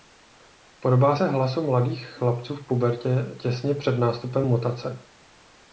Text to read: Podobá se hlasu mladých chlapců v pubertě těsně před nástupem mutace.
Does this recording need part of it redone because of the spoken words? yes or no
no